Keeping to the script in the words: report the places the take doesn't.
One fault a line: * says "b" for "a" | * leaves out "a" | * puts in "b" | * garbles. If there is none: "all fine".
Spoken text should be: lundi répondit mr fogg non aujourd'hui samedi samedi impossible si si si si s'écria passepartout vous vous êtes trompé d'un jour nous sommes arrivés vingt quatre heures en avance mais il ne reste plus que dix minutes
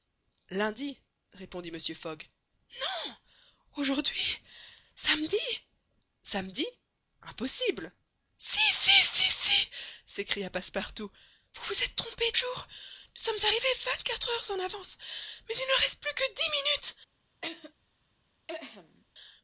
* leaves out "d'un"